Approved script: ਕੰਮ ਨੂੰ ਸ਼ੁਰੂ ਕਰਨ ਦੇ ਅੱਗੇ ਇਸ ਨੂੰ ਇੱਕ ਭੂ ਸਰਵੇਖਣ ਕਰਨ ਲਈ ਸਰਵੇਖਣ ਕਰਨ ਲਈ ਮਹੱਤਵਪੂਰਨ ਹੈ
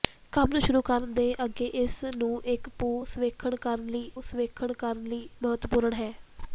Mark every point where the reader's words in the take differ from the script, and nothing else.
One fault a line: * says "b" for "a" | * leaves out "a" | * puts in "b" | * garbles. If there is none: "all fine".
all fine